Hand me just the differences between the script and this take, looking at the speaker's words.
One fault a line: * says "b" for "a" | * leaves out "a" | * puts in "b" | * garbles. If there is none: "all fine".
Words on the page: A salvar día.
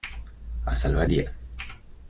all fine